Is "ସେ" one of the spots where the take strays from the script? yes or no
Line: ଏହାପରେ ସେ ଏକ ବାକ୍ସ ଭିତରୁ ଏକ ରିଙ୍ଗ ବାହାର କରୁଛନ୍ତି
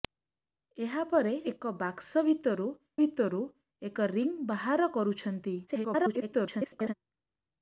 yes